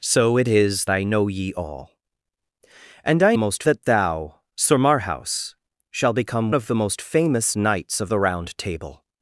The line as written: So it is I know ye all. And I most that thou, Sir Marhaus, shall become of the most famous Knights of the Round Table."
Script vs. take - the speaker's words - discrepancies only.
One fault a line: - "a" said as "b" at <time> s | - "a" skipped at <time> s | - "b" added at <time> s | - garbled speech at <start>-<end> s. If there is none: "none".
none